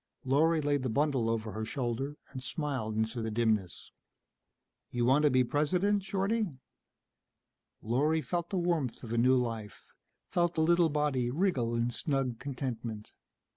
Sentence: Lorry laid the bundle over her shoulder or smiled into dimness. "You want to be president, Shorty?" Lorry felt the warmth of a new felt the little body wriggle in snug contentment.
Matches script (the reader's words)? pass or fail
fail